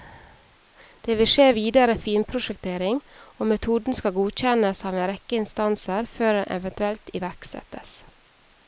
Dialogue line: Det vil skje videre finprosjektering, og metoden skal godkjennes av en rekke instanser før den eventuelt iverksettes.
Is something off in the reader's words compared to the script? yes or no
no